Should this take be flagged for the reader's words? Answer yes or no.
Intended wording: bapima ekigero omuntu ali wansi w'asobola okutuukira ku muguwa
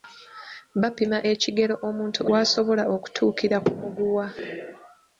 yes